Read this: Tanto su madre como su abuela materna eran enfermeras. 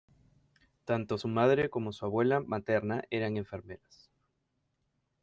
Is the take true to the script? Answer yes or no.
yes